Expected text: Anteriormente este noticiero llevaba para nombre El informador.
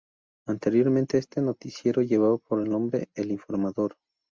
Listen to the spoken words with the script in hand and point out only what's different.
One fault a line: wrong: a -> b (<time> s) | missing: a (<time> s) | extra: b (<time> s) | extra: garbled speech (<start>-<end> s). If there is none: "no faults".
wrong: para -> por (2.4 s)